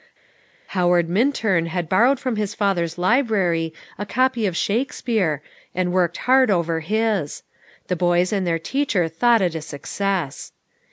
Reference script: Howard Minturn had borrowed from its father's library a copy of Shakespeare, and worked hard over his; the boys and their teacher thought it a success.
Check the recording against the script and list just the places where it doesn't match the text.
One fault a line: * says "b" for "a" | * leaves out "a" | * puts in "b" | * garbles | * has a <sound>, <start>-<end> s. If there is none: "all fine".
* says "his" for "its"